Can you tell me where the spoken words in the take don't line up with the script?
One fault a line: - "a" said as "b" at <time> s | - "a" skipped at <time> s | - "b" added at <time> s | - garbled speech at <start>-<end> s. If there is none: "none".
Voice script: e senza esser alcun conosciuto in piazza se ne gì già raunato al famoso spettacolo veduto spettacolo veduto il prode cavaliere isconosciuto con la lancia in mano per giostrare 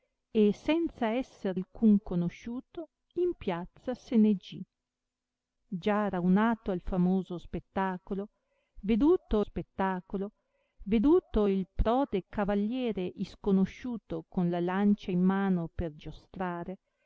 none